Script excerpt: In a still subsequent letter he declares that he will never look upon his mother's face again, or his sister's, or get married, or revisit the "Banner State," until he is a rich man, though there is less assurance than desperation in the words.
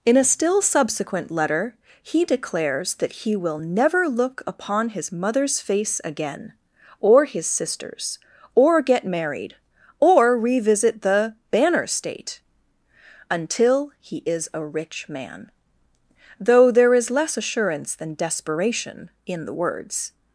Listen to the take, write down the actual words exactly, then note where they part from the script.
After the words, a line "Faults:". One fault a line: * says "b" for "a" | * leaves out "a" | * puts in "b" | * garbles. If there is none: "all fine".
In a still subsequent letter he declares that he will never look upon his mother's face again, or his sister's, or get married, or revisit the "Banner State," until he is a rich man, though there is less assurance than desperation in the words.
Faults:
all fine